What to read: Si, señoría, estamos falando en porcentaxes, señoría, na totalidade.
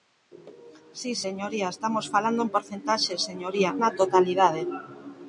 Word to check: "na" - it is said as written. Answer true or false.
true